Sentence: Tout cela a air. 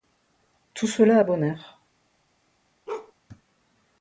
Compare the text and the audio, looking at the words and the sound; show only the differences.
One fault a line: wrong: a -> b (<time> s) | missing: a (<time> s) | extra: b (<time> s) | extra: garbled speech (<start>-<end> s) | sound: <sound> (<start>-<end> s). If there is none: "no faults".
extra: bon (1.2 s)
sound: bark (2.9-3.1 s)